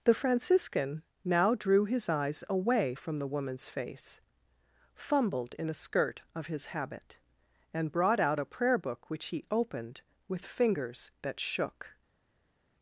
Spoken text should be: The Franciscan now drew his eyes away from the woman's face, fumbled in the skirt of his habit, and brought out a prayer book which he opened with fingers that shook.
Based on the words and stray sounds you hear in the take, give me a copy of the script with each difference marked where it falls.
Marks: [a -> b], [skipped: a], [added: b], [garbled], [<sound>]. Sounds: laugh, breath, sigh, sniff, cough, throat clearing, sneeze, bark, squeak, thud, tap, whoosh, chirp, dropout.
The Franciscan now drew his eyes away from the woman's face, fumbled in [the -> a] skirt of his habit, and brought out a prayer book which he opened with fingers that shook.